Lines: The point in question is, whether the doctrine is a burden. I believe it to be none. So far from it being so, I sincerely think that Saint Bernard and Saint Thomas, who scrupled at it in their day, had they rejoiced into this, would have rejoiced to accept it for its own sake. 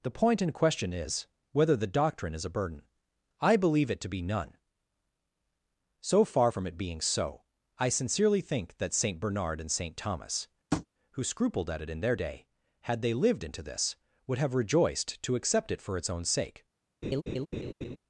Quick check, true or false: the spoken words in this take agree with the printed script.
false